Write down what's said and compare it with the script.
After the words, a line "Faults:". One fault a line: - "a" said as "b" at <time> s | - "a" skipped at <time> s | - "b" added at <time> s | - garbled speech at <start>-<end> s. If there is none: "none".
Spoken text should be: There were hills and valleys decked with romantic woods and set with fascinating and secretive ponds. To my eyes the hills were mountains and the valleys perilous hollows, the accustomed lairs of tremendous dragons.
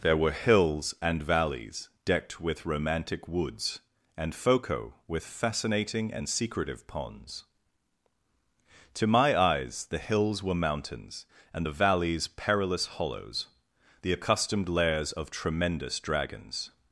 There were hills and valleys decked with romantic woods and foco with fascinating and secretive ponds. To my eyes the hills were mountains and the valleys perilous hollows, the accustomed lairs of tremendous dragons.
Faults:
- "set" said as "foco" at 4.3 s